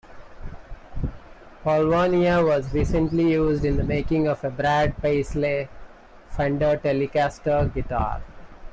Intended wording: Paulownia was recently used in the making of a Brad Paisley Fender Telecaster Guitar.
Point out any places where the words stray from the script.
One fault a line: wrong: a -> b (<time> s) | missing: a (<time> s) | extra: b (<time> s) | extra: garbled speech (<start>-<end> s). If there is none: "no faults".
no faults